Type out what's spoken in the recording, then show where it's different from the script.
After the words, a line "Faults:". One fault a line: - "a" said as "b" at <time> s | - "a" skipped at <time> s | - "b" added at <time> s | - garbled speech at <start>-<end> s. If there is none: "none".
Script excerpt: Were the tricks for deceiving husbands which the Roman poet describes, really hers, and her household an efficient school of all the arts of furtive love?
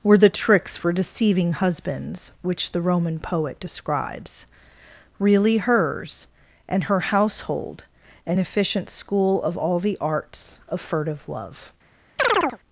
Were the tricks for deceiving husbands which the Roman poet describes, really hers, and her household an efficient school of all the arts of furtive love?
Faults:
none